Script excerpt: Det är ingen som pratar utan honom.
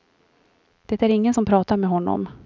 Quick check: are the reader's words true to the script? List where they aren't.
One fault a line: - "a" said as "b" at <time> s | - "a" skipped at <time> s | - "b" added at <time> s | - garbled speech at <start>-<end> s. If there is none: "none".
- "utan" said as "med" at 1.8 s